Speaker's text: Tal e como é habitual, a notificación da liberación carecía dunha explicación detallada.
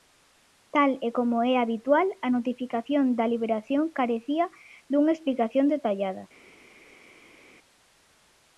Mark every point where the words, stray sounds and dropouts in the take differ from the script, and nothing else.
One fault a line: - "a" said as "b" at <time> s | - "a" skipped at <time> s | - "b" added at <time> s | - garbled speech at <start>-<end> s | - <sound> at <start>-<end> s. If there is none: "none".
none